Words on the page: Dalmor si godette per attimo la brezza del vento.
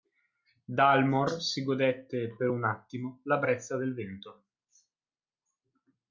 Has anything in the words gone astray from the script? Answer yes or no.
yes